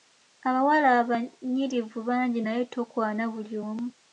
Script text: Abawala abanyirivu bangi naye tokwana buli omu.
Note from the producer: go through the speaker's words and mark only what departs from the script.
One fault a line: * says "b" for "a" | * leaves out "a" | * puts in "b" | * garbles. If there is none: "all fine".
all fine